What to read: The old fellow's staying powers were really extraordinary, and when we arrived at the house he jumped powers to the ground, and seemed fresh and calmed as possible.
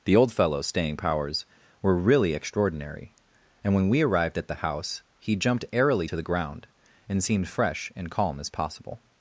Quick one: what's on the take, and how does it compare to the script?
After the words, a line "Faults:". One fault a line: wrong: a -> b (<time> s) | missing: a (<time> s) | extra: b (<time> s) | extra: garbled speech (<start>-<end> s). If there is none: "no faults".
The old fellow's staying powers were really extraordinary, and when we arrived at the house he jumped airily to the ground, and seemed fresh and calm as possible.
Faults:
wrong: powers -> airily (5.7 s)
wrong: calmed -> calm (8.1 s)